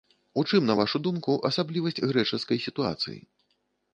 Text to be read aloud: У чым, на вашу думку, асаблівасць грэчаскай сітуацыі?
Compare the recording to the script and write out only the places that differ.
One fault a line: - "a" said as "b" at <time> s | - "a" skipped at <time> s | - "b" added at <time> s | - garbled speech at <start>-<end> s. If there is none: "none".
none